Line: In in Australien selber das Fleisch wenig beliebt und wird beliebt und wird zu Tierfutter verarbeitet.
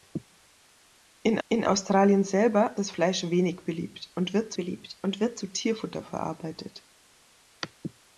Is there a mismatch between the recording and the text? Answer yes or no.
no